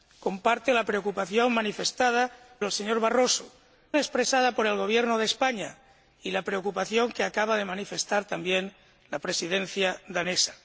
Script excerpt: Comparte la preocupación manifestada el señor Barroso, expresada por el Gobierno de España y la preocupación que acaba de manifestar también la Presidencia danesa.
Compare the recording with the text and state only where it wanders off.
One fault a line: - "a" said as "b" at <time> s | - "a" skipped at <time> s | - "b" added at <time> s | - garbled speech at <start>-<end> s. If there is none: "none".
none